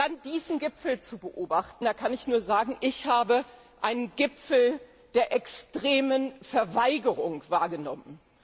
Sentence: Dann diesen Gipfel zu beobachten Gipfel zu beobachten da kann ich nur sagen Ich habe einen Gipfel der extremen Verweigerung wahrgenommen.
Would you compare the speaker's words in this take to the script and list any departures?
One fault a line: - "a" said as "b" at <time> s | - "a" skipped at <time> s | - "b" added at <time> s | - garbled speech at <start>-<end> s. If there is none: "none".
- "Gipfel zu beobachten" skipped at 1.8 s